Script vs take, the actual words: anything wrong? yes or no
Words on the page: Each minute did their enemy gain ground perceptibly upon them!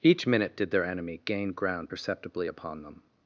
no